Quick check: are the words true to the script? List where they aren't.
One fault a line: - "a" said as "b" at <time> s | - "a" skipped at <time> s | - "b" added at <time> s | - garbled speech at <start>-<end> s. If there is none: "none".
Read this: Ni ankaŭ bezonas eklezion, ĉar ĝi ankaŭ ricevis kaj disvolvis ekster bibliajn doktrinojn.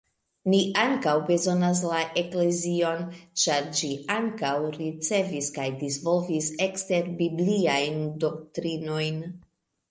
- "la" added at 1.9 s